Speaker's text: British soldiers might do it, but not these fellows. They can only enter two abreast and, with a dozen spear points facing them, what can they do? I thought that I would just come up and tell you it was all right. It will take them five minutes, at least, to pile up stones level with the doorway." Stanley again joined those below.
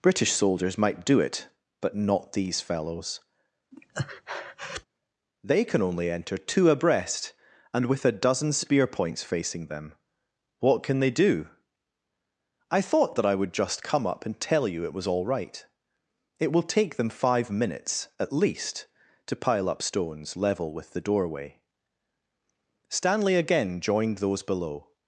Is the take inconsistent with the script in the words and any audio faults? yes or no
yes